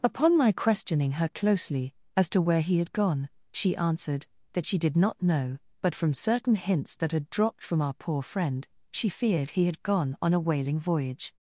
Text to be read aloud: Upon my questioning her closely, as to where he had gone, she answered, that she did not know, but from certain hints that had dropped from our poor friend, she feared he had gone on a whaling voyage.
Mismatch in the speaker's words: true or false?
false